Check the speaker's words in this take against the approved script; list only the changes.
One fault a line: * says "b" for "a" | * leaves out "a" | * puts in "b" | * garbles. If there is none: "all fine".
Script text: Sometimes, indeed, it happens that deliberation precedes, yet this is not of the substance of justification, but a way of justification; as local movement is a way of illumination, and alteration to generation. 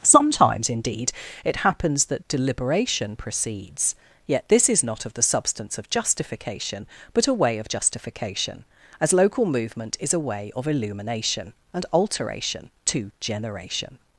all fine